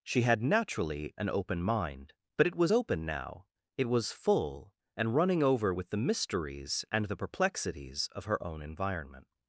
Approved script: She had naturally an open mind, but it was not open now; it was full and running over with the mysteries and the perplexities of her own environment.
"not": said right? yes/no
no